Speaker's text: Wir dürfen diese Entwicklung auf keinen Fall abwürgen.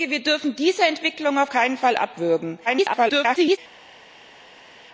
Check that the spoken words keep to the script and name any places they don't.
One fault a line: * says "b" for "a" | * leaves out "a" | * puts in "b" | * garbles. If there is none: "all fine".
* garbles